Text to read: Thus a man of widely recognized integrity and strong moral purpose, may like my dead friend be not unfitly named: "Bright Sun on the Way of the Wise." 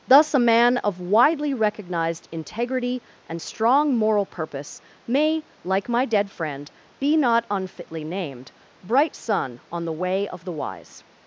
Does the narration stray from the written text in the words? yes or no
no